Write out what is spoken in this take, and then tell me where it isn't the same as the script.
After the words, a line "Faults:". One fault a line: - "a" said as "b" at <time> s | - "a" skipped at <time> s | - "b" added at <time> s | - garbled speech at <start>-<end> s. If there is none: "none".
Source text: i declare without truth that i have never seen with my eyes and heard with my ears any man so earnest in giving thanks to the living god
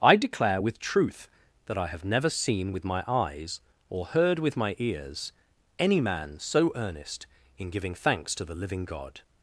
i declare with truth that i have never seen with my eyes or heard with my ears any man so earnest in giving thanks to the living god
Faults:
- "without" said as "with" at 0.6 s
- "and" said as "or" at 3.9 s